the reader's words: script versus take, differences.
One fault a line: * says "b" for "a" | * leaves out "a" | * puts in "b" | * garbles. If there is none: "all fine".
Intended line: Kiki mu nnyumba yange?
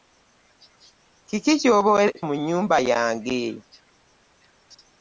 all fine